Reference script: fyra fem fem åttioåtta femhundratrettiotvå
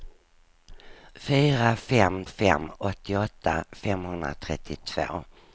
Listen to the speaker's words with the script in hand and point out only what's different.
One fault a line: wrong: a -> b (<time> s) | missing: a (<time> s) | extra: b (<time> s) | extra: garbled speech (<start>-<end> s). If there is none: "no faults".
no faults